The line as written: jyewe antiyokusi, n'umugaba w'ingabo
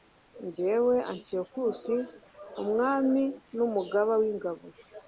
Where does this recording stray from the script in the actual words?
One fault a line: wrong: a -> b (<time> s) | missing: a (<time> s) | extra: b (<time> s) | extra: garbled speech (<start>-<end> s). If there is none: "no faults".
extra: umwami (2.6 s)